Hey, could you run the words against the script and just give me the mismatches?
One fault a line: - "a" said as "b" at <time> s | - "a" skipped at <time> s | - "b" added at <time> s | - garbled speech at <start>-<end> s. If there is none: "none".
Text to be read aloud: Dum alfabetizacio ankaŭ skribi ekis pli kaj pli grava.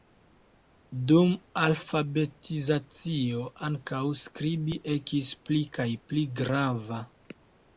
none